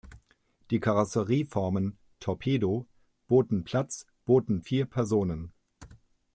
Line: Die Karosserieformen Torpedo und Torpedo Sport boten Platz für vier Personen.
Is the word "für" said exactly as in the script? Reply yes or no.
no